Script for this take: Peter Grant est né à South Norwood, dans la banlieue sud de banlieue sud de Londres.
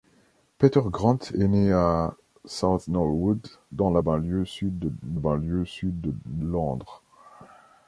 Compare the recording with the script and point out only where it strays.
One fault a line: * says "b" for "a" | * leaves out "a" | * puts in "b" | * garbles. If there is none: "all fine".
all fine